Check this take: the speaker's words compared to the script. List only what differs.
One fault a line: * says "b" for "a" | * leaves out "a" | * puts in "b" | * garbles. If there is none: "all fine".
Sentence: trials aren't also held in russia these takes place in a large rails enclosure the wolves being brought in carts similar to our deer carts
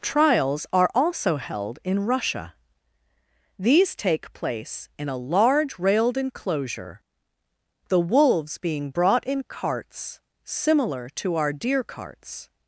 * says "are" for "aren't"
* says "take" for "takes"
* says "railed" for "rails"